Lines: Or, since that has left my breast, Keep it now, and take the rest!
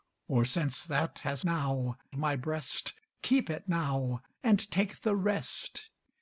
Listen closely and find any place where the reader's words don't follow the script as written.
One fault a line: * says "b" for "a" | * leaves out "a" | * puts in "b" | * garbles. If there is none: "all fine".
* says "now" for "left"